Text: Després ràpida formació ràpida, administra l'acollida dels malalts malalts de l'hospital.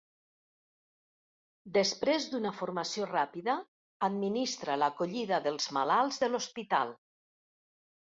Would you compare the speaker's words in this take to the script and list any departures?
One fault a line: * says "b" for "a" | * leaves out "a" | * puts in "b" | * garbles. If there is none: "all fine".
* says "d'una" for "ràpida"
* leaves out "malalts"